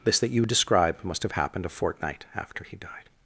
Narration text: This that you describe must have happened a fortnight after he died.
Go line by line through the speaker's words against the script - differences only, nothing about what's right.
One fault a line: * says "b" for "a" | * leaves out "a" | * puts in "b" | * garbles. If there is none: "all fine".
all fine